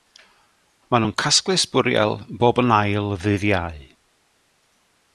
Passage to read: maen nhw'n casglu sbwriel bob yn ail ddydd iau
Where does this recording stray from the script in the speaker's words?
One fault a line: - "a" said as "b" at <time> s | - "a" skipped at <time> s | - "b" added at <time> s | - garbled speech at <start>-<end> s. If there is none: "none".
none